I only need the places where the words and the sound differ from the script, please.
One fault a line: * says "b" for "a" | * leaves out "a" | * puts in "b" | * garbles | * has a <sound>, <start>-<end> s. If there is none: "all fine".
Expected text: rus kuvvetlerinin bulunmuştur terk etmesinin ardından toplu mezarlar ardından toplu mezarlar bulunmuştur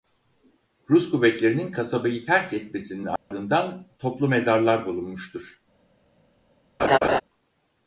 * says "kasabayı" for "bulunmuştur"
* has a dropout, 3.2-3.3 s
* leaves out "ardından toplu mezarlar"
* has a laugh, 6.8-7.2 s